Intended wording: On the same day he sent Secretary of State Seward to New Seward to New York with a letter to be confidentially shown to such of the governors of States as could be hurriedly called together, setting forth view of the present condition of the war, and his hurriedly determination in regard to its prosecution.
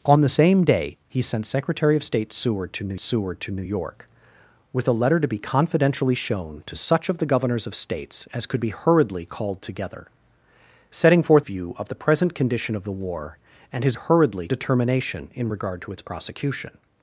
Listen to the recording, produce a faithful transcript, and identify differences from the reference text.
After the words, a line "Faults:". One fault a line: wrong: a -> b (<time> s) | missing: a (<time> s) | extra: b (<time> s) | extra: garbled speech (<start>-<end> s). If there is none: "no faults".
On the same day he sent Secretary of State Seward to New Seward to New York with a letter to be confidentially shown to such of the governors of States as could be hurriedly called together, setting forth view of the present condition of the war, and his hurriedly determination in regard to its prosecution.
Faults:
no faults